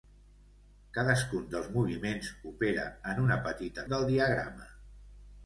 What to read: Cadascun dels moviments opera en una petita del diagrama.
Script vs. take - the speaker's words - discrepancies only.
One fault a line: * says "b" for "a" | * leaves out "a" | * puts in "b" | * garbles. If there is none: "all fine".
all fine